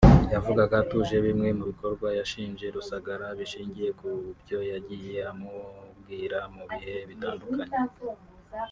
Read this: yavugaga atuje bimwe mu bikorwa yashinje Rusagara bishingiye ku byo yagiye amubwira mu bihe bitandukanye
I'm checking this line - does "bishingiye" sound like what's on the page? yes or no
yes